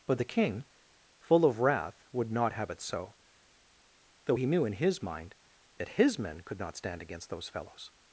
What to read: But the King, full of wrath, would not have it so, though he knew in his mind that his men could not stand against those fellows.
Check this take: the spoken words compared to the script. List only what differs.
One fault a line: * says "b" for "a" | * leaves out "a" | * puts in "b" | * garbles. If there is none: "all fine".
all fine